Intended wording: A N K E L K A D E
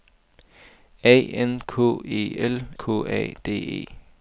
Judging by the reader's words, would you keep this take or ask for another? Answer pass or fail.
pass